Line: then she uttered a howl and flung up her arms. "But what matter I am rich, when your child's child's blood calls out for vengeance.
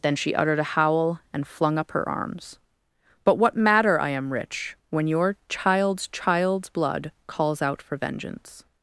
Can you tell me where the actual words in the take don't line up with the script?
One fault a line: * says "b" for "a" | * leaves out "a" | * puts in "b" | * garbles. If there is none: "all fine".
all fine